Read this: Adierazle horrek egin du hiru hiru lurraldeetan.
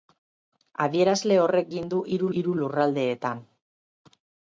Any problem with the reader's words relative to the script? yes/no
no